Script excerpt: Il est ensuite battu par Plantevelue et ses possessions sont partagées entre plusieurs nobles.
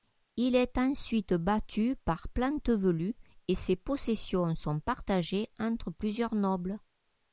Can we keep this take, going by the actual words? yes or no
yes